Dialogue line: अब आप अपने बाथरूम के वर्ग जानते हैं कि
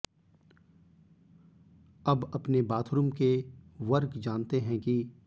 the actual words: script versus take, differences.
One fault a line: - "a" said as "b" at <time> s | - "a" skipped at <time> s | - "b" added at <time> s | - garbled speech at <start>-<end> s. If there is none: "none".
- "आप" skipped at 2.3 s